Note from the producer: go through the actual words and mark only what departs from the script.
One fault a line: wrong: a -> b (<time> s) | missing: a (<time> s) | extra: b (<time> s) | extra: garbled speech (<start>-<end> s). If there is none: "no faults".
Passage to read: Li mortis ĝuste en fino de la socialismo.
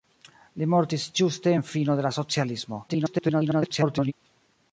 extra: garbled speech (2.9-4.1 s)